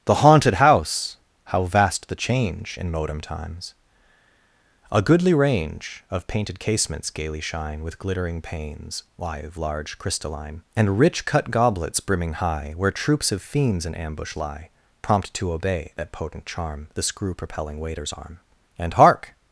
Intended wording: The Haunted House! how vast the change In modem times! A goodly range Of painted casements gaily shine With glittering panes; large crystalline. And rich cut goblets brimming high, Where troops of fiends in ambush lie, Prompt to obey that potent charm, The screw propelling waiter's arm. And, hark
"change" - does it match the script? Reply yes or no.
yes